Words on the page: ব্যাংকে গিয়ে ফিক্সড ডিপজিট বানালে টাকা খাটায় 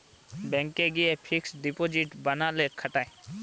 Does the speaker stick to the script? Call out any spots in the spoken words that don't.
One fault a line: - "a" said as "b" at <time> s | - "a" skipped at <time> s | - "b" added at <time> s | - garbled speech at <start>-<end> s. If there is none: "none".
- "টাকা" skipped at 2.6 s